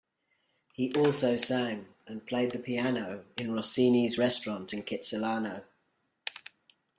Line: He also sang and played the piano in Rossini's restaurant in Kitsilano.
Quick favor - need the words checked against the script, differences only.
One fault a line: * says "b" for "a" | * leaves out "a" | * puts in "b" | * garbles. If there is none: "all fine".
all fine